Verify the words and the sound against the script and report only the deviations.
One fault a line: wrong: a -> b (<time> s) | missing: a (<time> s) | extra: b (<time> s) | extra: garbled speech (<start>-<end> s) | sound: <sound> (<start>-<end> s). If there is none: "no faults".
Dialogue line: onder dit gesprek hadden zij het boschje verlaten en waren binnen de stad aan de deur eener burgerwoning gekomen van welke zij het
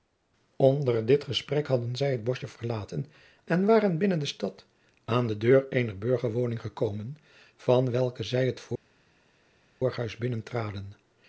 no faults